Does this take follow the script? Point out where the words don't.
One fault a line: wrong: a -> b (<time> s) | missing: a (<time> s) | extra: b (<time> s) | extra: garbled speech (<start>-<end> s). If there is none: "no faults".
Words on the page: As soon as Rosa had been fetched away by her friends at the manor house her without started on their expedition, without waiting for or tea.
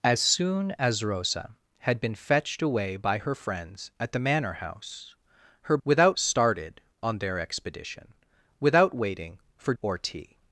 no faults